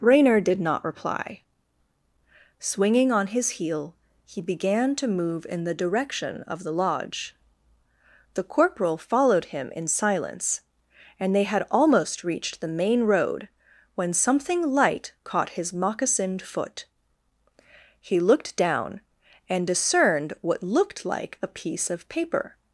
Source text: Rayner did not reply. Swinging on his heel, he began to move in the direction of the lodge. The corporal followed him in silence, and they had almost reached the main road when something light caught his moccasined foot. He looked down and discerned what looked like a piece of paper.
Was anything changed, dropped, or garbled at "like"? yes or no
no